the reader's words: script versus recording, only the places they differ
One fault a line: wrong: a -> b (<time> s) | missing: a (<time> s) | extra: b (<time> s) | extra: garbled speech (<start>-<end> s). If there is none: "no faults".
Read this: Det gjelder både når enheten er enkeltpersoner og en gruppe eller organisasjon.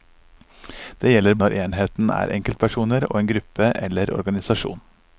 missing: både (1.4 s)